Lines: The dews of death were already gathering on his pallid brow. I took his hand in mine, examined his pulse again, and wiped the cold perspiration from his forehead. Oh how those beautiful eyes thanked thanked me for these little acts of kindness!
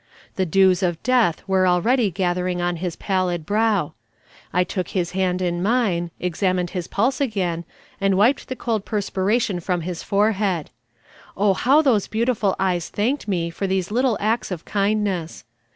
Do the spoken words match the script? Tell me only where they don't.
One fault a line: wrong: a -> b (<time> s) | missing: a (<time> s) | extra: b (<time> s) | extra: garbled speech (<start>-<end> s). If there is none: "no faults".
missing: thanked (13.3 s)